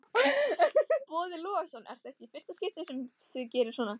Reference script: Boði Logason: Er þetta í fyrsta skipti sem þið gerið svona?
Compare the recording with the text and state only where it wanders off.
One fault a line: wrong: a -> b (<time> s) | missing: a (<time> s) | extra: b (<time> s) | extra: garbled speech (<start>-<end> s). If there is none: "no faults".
no faults